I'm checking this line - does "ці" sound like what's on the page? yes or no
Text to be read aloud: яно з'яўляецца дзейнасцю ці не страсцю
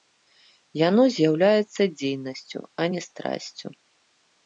no